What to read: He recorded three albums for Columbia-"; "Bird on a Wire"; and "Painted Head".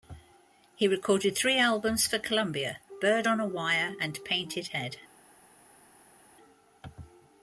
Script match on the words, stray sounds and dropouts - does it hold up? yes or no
yes